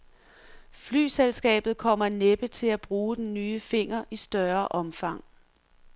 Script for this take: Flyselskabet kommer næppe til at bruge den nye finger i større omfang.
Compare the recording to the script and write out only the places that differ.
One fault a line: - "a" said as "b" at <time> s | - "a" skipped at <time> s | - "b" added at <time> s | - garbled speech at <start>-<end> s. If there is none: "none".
none